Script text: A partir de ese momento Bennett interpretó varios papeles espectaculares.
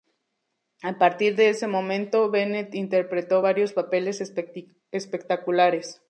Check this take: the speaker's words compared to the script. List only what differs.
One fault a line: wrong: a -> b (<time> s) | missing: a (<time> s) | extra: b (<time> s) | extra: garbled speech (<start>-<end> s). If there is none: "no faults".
no faults